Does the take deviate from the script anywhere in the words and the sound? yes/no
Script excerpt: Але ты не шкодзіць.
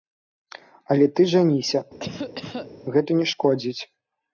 yes